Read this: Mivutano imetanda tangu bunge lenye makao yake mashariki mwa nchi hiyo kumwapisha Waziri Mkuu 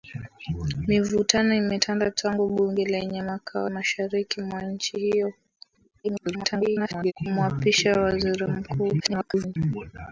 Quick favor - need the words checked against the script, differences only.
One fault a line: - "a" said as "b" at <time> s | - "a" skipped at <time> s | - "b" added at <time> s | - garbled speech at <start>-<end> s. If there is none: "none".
- "yake" skipped at 3.7 s
- garbled speech at 6.0-7.1 s
- garbled speech at 9.0-9.6 s